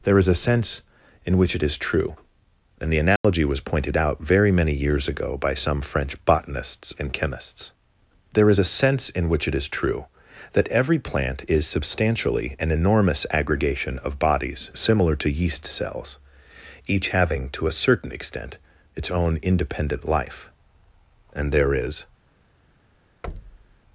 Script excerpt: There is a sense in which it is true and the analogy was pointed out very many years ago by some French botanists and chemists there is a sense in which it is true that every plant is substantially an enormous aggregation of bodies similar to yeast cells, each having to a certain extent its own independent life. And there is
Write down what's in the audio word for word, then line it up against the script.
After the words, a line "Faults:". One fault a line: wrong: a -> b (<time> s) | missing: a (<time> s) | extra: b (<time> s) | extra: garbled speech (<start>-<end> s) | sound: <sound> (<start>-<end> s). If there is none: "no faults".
There is a sense in which it is true and the analogy was pointed out very many years ago by some French botanists and chemists there is a sense in which it is true that every plant is substantially an enormous aggregation of bodies similar to yeast cells, each having to a certain extent its own independent life. And there is
Faults:
sound: dropout (3.2-3.2 s)
sound: thud (23.2-23.8 s)